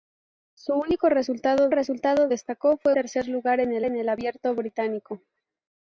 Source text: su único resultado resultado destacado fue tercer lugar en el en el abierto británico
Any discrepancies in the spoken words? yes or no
no